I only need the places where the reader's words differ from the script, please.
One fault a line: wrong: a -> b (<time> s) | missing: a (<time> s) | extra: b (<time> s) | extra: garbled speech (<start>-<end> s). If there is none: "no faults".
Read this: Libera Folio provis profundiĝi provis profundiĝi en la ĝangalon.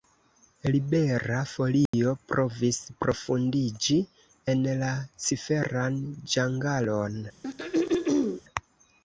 missing: provis profundiĝi (4.0 s)
extra: ciferan (5.3 s)